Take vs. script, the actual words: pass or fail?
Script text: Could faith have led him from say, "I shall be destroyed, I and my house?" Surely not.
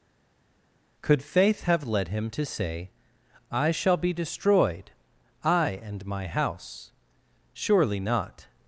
fail